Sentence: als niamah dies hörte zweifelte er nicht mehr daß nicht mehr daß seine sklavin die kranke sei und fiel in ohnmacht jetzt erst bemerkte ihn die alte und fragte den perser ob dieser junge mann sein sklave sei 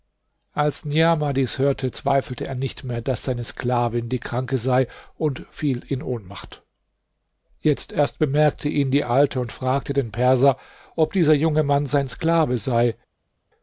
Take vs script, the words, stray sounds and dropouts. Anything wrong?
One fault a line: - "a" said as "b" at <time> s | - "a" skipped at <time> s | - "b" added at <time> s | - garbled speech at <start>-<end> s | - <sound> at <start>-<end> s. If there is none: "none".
- "nicht mehr daß" skipped at 3.2 s